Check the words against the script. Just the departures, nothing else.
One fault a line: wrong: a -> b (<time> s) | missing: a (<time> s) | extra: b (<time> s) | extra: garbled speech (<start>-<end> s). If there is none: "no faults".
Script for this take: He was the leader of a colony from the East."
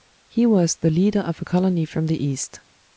no faults